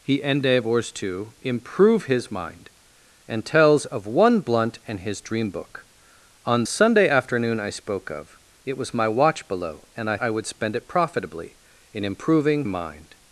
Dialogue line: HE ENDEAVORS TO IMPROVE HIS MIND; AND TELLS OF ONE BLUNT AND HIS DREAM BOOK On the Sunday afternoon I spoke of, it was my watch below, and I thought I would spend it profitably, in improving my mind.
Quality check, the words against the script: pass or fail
fail